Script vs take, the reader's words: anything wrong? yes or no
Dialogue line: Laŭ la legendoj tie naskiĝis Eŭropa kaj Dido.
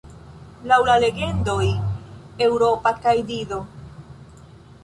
yes